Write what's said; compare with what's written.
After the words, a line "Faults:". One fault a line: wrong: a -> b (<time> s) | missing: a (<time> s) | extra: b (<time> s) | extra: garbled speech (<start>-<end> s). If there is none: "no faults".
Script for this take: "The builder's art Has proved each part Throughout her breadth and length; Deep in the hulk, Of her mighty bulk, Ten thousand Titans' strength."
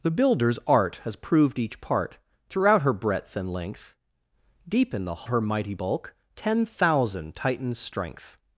"The builder's art Has proved each part Throughout her breadth and length; Deep in the her mighty bulk, Ten thousand Titans' strength."
Faults:
missing: hulk Of (5.3 s)